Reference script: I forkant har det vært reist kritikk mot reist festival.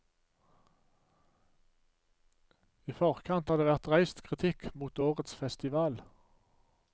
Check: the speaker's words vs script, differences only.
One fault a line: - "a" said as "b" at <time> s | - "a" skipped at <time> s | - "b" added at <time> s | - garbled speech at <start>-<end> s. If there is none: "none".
- "reist" said as "årets" at 5.0 s